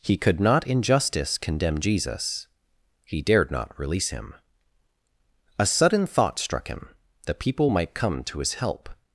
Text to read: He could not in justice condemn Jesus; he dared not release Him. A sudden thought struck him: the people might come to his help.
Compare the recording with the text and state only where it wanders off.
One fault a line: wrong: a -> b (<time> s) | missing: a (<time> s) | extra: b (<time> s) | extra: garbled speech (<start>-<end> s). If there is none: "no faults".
no faults